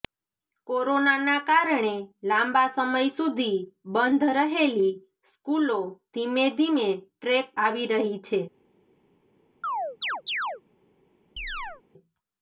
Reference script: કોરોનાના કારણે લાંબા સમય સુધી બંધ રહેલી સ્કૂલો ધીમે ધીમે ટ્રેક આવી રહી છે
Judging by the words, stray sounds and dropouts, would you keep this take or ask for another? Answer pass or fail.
fail